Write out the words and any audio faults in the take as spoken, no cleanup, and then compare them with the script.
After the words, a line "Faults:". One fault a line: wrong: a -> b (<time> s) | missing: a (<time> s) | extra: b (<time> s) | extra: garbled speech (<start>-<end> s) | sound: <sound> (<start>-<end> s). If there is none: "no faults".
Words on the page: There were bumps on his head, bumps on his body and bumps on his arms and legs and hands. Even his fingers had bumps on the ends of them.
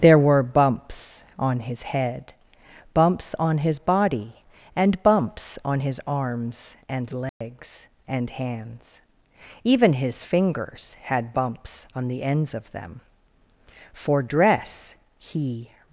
There were bumps on his head, bumps on his body and bumps on his arms and legs and hands. Even his fingers had bumps on the ends of them. For dress he
Faults:
sound: dropout (7.3-7.4 s)
extra: For dress he (13.9 s)